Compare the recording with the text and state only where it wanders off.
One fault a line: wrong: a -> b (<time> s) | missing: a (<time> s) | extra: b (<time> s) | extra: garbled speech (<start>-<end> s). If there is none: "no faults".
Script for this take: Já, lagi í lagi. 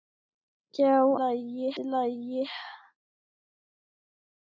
no faults